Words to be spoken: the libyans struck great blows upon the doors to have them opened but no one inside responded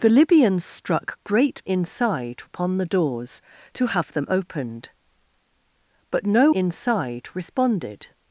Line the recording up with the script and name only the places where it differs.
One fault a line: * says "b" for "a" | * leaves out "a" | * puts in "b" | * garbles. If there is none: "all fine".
* says "inside" for "blows"
* leaves out "one"